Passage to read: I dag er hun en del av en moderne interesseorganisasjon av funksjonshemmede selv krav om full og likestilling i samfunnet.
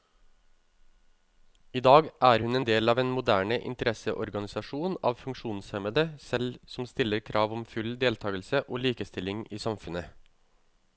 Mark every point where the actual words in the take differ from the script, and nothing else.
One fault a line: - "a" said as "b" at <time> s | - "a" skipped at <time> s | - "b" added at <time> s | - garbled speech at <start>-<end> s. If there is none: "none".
- "som stiller" added at 6.8 s
- "deltagelse" added at 8.1 s